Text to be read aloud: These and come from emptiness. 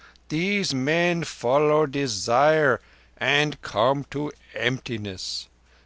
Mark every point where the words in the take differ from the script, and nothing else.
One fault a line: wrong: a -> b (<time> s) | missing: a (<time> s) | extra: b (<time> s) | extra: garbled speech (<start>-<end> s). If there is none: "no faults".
extra: men follow desire (0.7 s)
wrong: from -> to (4.1 s)